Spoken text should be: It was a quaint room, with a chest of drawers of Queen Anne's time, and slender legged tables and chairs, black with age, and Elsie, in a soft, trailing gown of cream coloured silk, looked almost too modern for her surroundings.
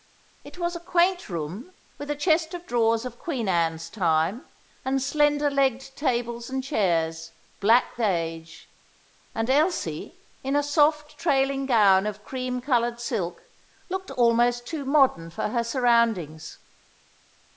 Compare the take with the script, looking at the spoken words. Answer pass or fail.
fail